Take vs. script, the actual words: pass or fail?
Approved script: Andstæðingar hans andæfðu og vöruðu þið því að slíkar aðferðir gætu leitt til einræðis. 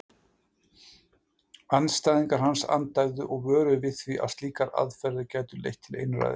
fail